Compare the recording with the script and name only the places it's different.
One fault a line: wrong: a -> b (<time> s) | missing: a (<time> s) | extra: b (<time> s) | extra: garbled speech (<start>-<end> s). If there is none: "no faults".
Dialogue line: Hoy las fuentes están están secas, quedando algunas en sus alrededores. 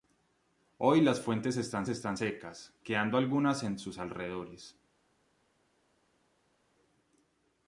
no faults